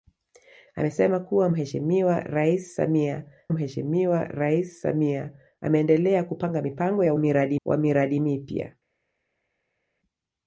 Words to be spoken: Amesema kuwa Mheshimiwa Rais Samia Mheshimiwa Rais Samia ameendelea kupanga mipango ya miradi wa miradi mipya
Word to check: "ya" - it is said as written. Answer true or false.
true